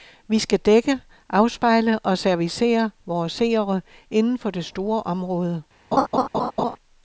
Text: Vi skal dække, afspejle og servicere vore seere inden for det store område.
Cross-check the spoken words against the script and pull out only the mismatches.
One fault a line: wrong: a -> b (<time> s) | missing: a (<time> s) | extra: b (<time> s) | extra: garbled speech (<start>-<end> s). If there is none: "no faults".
no faults